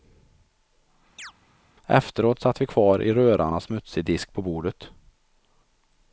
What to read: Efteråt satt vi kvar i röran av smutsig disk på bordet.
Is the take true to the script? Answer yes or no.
yes